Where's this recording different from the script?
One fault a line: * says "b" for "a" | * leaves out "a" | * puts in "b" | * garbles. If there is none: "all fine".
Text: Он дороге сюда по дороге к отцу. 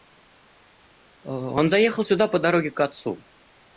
* says "заехал" for "дороге"